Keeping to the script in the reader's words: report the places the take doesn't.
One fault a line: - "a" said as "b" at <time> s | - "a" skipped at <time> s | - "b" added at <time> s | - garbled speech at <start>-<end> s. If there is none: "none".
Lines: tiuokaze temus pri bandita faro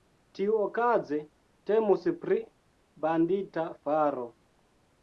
none